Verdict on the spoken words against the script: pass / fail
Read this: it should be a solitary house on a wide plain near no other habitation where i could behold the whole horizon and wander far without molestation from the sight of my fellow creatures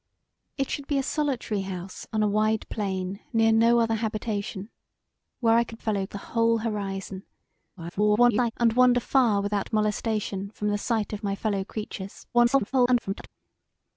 fail